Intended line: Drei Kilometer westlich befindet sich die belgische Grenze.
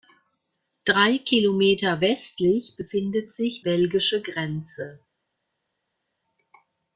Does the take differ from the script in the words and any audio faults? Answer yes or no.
yes